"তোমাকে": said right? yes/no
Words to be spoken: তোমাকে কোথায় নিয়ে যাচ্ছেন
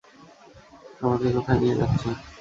no